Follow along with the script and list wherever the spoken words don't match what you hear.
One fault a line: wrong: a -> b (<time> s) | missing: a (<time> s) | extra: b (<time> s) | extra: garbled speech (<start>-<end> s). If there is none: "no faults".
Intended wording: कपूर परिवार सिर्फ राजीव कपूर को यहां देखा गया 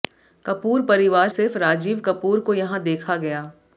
no faults